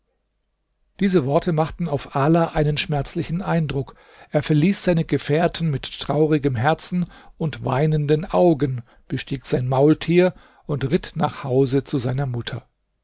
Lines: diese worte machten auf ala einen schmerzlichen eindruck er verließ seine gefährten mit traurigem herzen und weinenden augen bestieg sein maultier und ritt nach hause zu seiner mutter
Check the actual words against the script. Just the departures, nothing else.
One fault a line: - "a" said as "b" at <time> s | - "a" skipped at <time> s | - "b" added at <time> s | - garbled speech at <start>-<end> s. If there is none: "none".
none